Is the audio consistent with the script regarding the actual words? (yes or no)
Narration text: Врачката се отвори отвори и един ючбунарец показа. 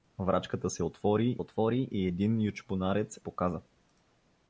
yes